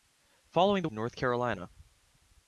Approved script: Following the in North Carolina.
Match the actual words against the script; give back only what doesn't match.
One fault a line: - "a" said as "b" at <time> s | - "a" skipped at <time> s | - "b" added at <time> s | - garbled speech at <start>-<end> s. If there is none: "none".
none